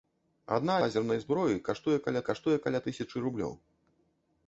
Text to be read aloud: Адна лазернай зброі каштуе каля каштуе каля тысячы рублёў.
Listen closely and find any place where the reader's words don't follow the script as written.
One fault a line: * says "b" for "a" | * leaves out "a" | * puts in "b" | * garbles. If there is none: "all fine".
all fine